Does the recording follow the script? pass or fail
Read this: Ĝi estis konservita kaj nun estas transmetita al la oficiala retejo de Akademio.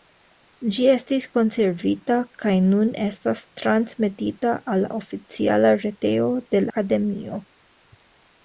pass